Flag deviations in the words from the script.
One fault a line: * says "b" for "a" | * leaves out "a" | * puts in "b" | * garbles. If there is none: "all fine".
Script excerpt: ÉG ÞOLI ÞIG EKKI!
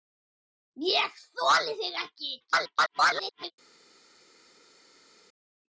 * garbles